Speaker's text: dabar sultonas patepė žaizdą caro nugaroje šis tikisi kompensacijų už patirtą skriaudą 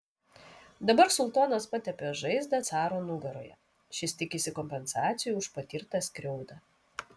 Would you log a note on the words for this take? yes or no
no